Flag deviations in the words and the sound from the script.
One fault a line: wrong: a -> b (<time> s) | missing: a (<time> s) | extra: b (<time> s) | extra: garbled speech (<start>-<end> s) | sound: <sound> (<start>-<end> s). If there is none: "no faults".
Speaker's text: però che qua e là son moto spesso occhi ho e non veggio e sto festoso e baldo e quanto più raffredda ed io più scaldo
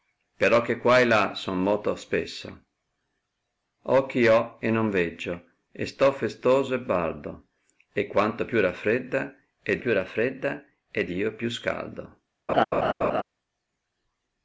extra: più raffredda ed (9.8 s)
sound: laugh (12.5-13.2 s)